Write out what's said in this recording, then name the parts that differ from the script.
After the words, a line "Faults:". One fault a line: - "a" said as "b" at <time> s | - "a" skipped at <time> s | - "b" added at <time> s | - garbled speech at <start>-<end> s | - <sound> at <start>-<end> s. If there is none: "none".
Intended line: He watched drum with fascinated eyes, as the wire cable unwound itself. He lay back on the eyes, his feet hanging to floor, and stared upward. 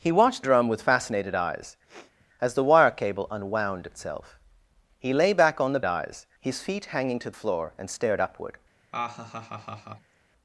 He watched drum with fascinated eyes, as the wire cable unwound itself. He lay back on the eyes, his feet hanging to floor, and stared upward.
Faults:
- sniff at 1.9-2.3 s
- laugh at 8.9-10.1 s